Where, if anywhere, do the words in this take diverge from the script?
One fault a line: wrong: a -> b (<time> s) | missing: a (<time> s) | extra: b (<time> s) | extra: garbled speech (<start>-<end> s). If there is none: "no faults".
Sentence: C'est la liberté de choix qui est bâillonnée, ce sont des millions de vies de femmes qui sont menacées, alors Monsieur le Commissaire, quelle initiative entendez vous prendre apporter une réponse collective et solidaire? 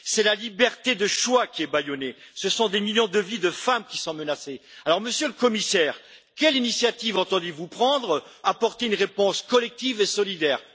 no faults